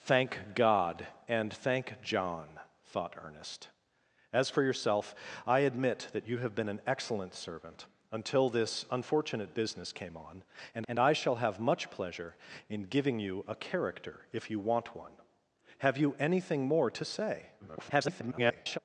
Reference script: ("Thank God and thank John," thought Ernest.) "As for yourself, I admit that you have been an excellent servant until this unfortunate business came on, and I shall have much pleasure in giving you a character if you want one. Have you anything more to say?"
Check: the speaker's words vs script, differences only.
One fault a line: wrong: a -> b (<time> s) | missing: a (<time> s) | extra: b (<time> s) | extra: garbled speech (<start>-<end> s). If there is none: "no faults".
extra: and (10.9 s)
extra: garbled speech (17.6-18.8 s)